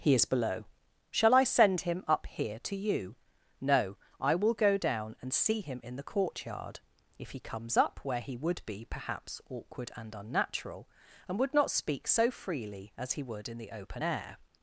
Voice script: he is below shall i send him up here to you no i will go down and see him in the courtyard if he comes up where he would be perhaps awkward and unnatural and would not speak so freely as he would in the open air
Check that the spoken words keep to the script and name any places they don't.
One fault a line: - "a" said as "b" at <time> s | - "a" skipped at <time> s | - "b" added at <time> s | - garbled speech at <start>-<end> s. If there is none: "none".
none